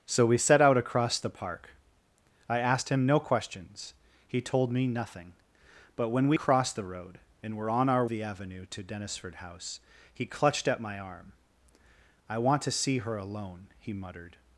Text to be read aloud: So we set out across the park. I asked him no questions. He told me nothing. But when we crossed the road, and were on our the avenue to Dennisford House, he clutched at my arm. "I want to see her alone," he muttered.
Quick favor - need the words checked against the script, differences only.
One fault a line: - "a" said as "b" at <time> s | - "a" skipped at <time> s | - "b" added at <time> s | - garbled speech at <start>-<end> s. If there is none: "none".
none